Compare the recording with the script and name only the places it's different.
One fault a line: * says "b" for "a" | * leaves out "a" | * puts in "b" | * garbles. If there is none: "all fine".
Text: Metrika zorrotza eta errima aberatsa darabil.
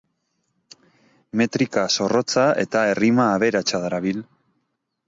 all fine